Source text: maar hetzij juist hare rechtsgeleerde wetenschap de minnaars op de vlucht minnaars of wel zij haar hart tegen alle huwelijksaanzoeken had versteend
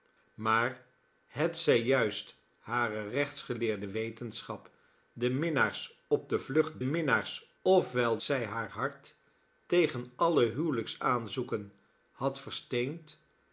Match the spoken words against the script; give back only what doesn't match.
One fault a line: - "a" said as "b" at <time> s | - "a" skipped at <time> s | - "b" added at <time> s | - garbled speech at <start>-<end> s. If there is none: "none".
none